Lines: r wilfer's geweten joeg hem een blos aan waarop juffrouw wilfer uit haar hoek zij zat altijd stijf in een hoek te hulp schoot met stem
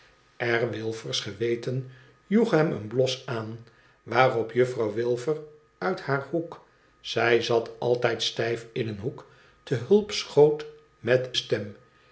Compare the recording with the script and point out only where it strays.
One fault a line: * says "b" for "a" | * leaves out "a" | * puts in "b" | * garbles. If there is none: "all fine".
all fine